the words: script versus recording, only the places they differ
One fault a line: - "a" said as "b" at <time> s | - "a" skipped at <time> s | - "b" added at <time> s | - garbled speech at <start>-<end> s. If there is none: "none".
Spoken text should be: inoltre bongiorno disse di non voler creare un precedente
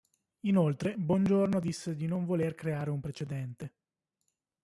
none